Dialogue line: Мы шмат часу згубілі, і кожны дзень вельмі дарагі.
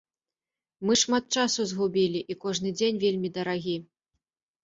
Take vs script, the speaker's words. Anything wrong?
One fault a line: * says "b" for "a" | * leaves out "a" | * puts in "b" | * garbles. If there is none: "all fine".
all fine